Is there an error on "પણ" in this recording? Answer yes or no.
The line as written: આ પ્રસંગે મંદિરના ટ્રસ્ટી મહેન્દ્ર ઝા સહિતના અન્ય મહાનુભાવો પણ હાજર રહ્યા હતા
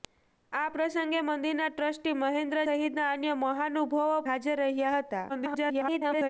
yes